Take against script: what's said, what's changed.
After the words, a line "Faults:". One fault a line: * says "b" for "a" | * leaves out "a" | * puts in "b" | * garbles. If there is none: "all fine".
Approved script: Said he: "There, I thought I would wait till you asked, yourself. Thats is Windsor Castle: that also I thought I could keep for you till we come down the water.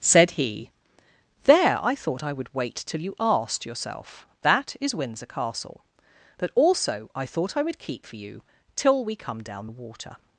Said he: "There, I thought I would wait till you asked, yourself. That is Windsor Castle: that also I thought I would keep for you till we come down the water.
Faults:
* says "That" for "Thats"
* says "would" for "could"